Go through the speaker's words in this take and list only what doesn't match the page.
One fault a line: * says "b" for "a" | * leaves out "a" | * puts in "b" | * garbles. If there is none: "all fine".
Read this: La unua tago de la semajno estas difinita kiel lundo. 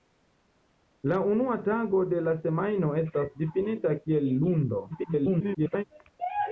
* garbles